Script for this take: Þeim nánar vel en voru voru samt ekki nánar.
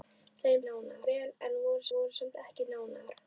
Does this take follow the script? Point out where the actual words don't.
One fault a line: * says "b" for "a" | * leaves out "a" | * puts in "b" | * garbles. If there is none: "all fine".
all fine